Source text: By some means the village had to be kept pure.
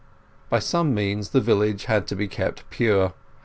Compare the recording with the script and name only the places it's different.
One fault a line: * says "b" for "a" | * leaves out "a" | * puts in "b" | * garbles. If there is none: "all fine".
all fine